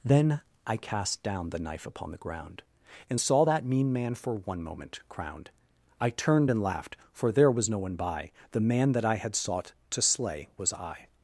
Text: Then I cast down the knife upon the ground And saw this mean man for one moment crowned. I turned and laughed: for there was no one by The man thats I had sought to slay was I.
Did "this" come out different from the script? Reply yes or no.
yes